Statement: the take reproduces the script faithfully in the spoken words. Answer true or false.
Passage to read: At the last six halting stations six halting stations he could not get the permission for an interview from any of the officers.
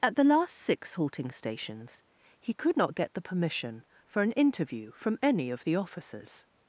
false